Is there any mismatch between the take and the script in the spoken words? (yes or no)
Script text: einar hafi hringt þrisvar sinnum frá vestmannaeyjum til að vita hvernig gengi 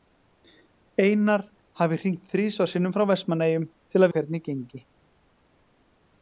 yes